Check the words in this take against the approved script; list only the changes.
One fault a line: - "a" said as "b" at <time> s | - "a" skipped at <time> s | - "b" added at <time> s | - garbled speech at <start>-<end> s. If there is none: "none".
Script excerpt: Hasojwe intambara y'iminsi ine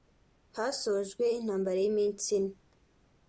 none